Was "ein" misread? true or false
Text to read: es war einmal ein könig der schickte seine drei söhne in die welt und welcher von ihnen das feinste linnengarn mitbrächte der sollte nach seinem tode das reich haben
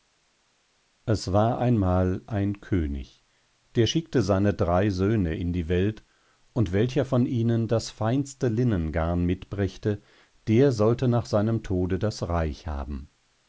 false